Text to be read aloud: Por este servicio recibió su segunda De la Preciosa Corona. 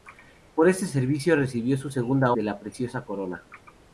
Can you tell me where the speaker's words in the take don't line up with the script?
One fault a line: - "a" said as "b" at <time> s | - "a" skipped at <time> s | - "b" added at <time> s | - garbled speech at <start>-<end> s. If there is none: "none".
none